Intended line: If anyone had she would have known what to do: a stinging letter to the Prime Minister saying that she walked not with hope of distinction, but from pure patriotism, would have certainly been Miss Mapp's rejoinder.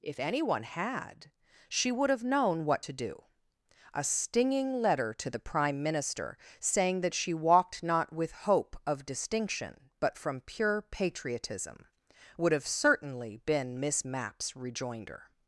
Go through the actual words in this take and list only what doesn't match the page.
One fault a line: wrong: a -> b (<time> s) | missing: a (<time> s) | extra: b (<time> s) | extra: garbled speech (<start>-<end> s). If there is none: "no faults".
no faults